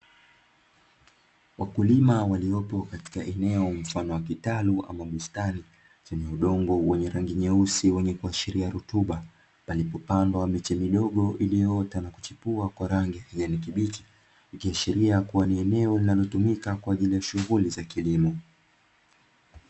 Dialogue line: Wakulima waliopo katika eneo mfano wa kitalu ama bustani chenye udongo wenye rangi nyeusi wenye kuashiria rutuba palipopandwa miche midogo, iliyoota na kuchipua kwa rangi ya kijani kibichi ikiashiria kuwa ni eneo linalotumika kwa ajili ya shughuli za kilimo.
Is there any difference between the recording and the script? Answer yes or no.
no